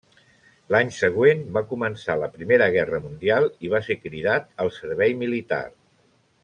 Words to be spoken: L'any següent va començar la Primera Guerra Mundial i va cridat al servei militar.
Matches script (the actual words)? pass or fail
fail